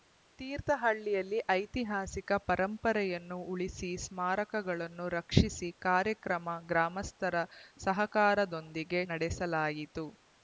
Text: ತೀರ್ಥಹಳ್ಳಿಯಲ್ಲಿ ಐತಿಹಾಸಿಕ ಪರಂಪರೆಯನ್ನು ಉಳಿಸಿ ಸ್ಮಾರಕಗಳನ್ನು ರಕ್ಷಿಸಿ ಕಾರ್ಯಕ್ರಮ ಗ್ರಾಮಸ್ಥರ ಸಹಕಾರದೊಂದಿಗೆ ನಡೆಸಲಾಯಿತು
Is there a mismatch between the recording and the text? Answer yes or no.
no